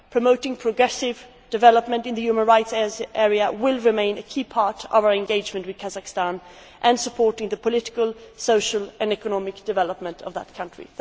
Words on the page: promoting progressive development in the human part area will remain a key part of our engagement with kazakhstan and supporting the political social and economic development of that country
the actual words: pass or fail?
fail